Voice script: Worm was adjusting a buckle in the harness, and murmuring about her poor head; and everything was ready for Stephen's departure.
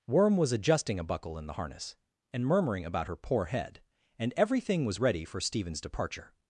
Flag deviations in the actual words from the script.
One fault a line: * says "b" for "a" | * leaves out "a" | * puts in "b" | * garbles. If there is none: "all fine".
all fine